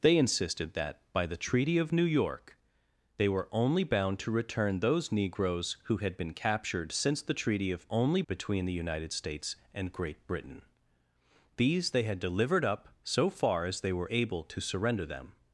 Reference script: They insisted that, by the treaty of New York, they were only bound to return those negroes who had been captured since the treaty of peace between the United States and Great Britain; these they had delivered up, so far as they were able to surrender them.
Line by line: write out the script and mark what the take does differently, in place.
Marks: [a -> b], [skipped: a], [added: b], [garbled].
They insisted that, by the treaty of New York, they were only bound to return those negroes who had been captured since the treaty of [peace -> only] between the United States and Great Britain; these they had delivered up, so far as they were able to surrender them.